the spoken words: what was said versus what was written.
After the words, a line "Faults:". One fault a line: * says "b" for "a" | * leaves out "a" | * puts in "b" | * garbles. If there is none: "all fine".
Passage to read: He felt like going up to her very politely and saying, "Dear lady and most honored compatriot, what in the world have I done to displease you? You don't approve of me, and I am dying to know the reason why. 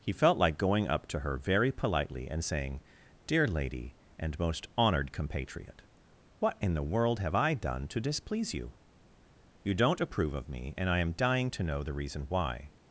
He felt like going up to her very politely and saying, "Dear lady and most honored compatriot, what in the world have I done to displease you? You don't approve of me, and I am dying to know the reason why.
Faults:
all fine